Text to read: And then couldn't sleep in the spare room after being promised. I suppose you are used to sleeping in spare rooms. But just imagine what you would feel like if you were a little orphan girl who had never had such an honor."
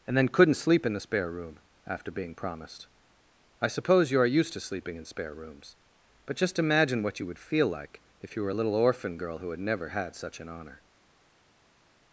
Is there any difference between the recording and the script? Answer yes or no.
no